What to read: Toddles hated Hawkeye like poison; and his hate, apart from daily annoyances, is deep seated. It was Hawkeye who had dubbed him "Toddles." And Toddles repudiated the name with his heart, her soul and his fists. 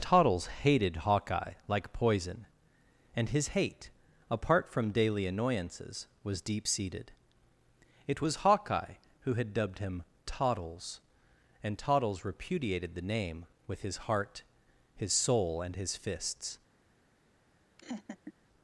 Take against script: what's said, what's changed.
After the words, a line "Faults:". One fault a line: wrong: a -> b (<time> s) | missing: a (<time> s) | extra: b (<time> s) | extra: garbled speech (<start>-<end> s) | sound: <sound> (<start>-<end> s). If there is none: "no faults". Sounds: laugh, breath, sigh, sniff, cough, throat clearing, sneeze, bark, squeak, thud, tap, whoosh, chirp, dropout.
Toddles hated Hawkeye like poison; and his hate, apart from daily annoyances, was deep seated. It was Hawkeye who had dubbed him "Toddles." And Toddles repudiated the name with his heart, his soul and his fists.
Faults:
wrong: is -> was (6.2 s)
wrong: her -> his (15.0 s)
sound: laugh (17.8-18.3 s)